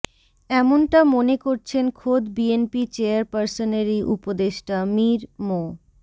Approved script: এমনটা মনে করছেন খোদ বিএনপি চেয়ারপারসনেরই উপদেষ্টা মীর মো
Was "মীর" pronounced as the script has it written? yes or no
yes